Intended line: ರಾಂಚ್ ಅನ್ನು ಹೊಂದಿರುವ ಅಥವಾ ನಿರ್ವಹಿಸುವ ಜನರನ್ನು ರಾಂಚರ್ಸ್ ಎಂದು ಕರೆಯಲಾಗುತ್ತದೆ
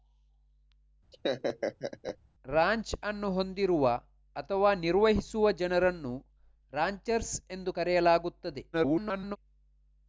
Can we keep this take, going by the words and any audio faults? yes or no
no